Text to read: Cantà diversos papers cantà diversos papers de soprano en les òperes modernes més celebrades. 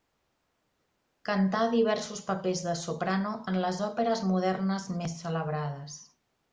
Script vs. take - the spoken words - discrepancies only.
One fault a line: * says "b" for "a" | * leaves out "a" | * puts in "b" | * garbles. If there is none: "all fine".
* leaves out "cantà diversos papers"